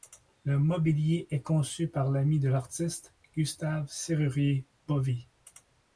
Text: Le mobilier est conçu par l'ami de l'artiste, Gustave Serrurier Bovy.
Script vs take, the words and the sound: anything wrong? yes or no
no